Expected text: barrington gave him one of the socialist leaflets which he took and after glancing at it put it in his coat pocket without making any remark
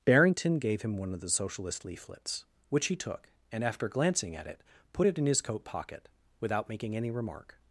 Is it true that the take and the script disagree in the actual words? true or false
false